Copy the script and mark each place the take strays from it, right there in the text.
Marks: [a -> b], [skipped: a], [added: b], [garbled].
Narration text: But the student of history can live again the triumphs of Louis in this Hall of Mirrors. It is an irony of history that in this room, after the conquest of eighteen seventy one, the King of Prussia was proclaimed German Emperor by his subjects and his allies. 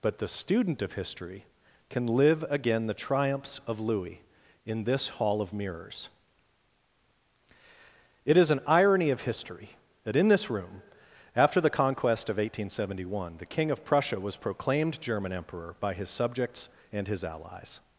But the student of history can live again the triumphs of Louis in this Hall of Mirrors. It is an irony of history that in this room, after the conquest of eighteen seventy one, the King of Prussia was proclaimed German Emperor by his subjects and his allies.